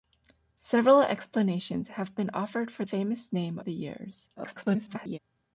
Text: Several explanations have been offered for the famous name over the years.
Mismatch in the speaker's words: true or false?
true